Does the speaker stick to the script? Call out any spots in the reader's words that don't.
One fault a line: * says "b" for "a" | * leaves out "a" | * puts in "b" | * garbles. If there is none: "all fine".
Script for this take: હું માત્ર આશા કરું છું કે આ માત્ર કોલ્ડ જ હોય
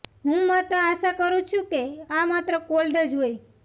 all fine